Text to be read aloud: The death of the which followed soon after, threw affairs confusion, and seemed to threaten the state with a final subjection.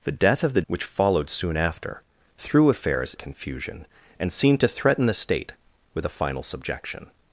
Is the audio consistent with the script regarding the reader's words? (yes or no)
yes